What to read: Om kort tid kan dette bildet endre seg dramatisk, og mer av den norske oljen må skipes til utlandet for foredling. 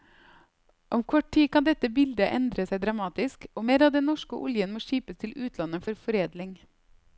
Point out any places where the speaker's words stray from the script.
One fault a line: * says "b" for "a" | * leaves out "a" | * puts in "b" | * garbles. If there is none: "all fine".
all fine